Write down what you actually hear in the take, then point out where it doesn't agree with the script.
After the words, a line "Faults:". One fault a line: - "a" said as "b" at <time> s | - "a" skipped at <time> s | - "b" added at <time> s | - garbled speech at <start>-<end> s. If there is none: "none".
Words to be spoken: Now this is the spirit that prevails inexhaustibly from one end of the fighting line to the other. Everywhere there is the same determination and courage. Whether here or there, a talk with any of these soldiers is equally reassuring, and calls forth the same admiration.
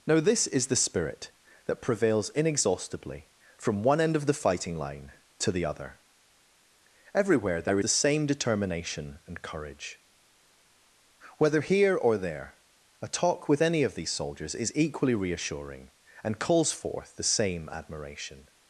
Now this is the spirit that prevails inexhaustibly from one end of the fighting line to the other. Everywhere there the same determination and courage. Whether here or there, a talk with any of these soldiers is equally reassuring, and calls forth the same admiration.
Faults:
- "is" skipped at 7.8 s